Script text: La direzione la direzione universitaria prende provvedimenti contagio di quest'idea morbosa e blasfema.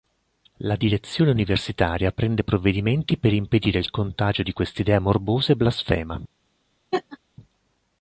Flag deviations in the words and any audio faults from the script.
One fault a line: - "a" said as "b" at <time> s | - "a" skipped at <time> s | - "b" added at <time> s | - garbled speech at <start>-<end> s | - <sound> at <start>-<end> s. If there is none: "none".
- "la direzione" skipped at 1.3 s
- "per impedire il" added at 3.2 s
- laugh at 6.9-7.2 s